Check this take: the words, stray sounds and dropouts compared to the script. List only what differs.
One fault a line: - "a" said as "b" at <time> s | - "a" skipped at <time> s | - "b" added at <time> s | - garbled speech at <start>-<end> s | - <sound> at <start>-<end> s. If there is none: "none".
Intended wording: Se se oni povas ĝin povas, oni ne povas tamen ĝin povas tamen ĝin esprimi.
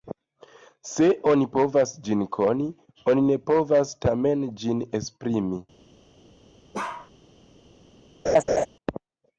- "se" skipped at 1.1 s
- "povas" said as "koni" at 2.4 s
- "povas tamen ĝin" skipped at 4.8 s
- bark at 6.7-7.1 s
- laugh at 8.3-8.7 s